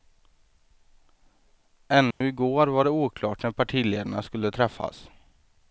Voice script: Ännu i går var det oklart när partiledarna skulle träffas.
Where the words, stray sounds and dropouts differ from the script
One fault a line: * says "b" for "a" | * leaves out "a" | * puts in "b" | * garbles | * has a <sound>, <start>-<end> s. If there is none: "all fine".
* has a dropout, 2.1-2.2 s